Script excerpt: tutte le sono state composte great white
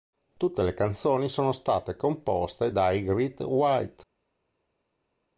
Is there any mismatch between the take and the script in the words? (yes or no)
yes